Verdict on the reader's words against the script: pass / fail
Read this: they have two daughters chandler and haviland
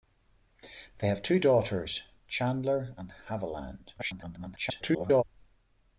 fail